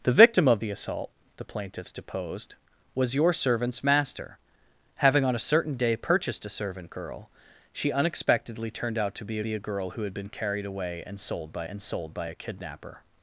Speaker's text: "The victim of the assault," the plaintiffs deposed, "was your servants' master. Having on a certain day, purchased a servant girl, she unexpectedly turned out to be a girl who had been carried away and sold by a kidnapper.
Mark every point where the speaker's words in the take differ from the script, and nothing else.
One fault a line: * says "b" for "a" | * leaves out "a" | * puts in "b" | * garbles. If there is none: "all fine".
* puts in "be"
* puts in "and sold by"